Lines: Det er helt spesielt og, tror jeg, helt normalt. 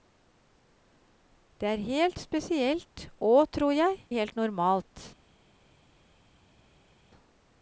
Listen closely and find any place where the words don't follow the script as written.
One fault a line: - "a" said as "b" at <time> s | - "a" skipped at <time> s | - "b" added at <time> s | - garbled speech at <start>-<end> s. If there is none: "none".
none